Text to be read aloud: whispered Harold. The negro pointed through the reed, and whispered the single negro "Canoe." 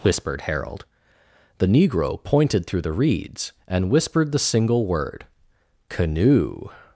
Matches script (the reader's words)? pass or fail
fail